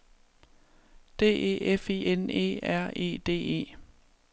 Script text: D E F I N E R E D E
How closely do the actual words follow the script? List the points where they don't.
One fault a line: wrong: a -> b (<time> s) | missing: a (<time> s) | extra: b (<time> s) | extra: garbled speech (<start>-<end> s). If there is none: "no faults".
no faults